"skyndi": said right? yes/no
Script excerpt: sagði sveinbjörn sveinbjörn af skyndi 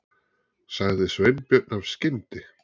yes